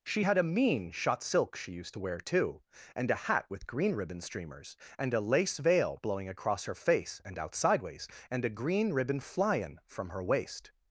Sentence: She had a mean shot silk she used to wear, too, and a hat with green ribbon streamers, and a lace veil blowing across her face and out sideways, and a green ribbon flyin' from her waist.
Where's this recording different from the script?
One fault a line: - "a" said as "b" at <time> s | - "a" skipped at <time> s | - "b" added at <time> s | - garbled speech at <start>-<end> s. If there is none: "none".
none